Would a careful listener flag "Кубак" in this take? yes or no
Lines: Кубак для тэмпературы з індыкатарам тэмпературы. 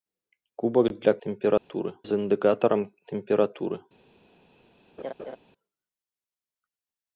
no